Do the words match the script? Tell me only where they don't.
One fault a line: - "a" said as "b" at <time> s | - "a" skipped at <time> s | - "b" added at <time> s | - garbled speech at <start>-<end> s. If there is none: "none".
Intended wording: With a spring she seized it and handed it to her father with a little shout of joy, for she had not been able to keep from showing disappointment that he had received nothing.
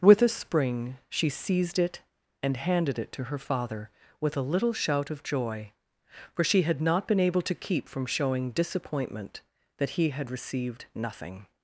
none